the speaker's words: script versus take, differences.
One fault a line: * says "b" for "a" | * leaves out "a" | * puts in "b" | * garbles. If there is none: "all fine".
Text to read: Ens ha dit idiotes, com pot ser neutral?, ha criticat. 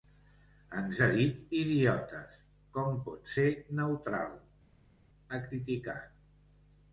all fine